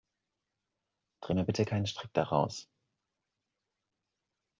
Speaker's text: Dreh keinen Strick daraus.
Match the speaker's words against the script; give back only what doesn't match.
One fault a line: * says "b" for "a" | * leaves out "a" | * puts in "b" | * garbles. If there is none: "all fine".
* puts in "mir bitte"